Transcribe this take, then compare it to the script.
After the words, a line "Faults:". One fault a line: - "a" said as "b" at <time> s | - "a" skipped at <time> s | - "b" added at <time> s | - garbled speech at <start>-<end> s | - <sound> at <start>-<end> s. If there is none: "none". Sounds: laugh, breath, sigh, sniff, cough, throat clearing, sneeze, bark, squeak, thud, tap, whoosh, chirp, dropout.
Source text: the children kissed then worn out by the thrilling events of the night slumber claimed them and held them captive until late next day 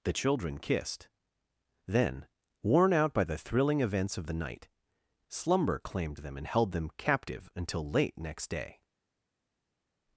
the children kissed then worn out by the thrilling events of the night slumber claimed them and held them captive until late next day
Faults:
none